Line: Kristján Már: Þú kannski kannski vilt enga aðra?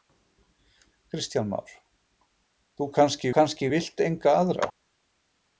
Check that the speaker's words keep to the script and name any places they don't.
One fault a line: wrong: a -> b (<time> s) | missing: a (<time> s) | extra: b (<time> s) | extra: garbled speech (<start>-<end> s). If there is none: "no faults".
no faults